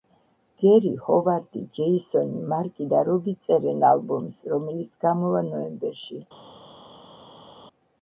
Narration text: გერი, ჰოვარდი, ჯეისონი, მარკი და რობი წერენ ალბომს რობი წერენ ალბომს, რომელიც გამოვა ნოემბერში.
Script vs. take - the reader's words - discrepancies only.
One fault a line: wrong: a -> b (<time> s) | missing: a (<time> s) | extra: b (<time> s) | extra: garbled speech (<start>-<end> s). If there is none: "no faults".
missing: რობი წერენ ალბომს (4.4 s)